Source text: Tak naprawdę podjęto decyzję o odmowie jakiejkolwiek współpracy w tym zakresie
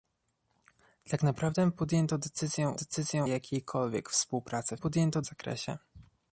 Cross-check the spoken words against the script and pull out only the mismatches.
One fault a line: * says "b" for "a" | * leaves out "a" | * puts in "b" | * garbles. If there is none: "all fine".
* says "decyzję" for "odmowie"
* says "podjęto" for "tym"